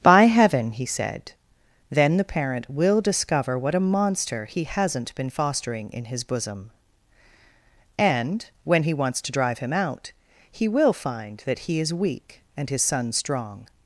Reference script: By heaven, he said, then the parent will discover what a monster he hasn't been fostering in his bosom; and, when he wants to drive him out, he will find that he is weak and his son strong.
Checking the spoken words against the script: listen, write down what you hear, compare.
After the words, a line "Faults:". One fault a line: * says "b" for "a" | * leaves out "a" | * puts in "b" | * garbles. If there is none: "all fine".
By heaven, he said, then the parent will discover what a monster he hasn't been fostering in his bosom; and, when he wants to drive him out, he will find that he is weak and his son strong.
Faults:
all fine